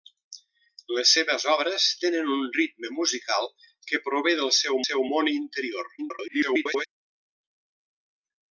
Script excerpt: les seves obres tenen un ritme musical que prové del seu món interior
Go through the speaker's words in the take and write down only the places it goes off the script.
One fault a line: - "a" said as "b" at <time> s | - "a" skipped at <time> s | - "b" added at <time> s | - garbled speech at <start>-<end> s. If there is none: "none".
- "seu" added at 4.9 s
- garbled speech at 6.0-6.9 s